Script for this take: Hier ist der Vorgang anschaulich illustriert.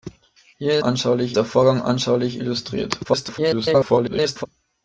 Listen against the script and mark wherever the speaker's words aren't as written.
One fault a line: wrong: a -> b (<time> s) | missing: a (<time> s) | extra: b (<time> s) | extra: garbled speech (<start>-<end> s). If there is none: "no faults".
wrong: ist -> anschaulich (0.8 s)
extra: garbled speech (3.0-4.5 s)